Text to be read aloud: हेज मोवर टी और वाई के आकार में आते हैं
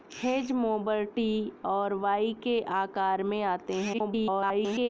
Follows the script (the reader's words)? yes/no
no